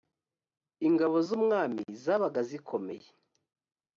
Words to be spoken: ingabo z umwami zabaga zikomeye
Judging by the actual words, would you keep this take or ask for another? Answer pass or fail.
pass